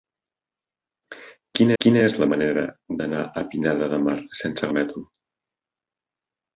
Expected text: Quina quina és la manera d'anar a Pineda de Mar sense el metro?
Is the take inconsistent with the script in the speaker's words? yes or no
no